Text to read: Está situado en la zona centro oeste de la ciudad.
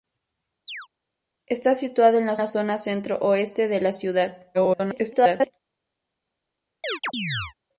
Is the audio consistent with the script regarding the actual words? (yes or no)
no